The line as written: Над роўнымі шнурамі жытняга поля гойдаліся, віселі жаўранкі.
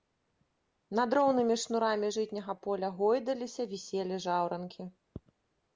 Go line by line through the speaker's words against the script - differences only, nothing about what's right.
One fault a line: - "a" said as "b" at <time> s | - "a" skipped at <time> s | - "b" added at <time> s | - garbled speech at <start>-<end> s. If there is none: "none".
none